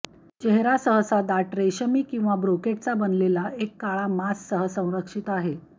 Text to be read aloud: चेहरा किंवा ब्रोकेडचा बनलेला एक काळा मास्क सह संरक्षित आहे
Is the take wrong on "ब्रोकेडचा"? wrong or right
right